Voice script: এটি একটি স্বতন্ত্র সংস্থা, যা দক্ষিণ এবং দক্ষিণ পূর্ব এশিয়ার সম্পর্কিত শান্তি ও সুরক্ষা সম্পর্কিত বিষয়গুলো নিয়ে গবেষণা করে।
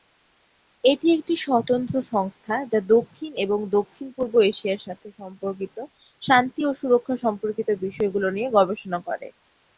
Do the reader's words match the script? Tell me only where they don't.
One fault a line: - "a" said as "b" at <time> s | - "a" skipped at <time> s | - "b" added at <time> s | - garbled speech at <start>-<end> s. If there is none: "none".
- "সাথে" added at 4.9 s